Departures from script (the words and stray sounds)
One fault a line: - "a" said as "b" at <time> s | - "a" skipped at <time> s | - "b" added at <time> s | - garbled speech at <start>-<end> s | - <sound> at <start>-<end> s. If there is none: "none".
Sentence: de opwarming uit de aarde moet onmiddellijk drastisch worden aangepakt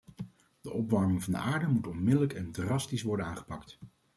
- "uit" said as "van" at 1.2 s
- "en" added at 2.3 s